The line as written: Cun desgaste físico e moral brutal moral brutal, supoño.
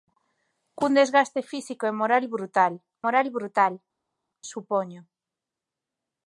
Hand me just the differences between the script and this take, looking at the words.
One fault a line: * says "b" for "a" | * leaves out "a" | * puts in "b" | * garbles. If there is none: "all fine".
all fine